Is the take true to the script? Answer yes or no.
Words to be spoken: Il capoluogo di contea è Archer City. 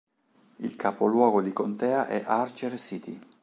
yes